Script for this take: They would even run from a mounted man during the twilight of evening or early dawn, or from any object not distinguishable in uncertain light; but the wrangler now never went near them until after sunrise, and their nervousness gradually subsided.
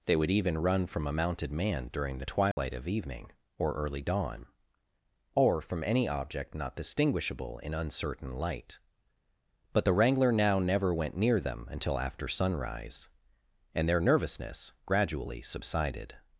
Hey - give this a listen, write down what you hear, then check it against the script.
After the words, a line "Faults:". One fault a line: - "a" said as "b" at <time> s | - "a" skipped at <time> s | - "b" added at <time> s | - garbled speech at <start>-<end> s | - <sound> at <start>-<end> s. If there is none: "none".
They would even run from a mounted man during the twilight of evening or early dawn, or from any object not distinguishable in uncertain light; but the wrangler now never went near them until after sunrise, and their nervousness gradually subsided.
Faults:
- dropout at 2.5-2.6 s